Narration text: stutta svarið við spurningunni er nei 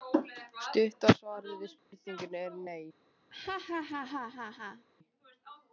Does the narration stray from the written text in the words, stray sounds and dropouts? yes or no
yes